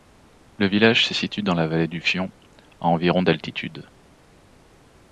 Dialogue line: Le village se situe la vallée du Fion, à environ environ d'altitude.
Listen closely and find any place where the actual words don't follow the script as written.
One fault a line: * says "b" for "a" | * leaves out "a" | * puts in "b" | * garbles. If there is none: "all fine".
* puts in "dans"
* leaves out "environ"